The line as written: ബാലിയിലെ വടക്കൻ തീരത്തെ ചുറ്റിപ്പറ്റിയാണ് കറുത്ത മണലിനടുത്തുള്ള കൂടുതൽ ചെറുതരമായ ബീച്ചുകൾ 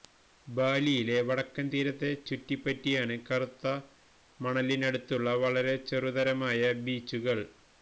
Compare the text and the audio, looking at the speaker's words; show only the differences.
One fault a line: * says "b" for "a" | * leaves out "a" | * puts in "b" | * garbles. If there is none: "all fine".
* says "വളരെ" for "കൂടുതൽ"